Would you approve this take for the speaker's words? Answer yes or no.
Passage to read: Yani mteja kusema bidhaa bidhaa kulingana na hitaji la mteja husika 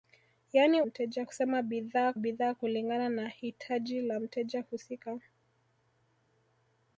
yes